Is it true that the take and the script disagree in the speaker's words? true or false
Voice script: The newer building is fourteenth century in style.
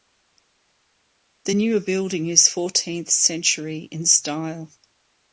false